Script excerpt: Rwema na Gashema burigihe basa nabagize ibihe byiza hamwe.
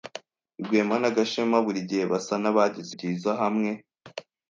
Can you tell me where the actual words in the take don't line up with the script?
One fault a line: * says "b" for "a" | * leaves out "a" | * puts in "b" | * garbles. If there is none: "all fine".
* leaves out "ibihe"